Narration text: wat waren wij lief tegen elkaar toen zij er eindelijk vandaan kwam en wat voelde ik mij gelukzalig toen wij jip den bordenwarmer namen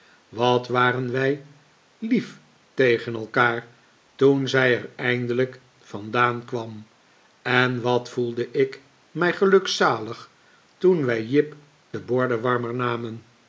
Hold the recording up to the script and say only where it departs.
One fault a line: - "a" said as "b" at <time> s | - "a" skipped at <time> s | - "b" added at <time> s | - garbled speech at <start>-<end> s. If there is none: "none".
none